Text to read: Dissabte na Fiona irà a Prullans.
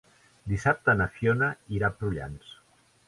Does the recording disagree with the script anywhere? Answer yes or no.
no